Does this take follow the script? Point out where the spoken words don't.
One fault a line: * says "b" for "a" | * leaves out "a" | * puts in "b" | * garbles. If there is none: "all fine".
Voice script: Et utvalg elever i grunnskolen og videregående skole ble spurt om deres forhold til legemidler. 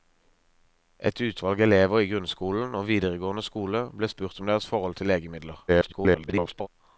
* garbles